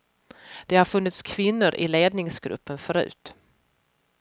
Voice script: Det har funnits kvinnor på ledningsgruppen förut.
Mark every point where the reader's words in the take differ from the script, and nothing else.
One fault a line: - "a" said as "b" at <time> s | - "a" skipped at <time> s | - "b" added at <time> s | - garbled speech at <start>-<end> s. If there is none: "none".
- "på" said as "i" at 1.7 s